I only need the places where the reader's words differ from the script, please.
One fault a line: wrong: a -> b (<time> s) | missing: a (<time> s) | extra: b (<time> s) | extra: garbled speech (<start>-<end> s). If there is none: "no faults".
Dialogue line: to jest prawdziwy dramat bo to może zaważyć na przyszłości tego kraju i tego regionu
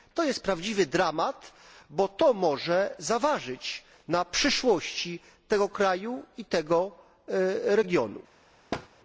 no faults